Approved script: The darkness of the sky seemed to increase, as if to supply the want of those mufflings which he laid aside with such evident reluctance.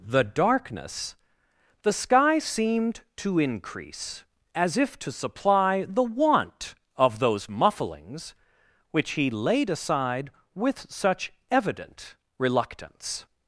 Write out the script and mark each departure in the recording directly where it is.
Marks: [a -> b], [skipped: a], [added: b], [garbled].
The darkness [skipped: of] the sky seemed to increase, as if to supply the want of those mufflings which he laid aside with such evident reluctance.